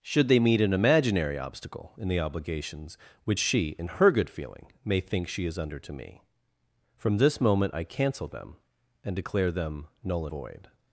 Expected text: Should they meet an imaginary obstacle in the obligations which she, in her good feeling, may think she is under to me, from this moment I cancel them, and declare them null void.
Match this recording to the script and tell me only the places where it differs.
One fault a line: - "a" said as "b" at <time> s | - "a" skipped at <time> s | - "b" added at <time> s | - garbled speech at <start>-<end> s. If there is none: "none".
none